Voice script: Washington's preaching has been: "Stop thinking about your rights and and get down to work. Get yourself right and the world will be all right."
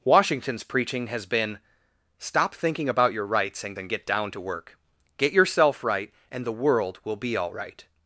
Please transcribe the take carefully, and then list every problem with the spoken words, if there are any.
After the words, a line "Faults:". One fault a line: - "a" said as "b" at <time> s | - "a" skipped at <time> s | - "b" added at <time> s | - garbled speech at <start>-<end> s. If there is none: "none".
Washington's preaching has been: "Stop thinking about your rights and and get down to work. Get yourself right and the world will be all right."
Faults:
none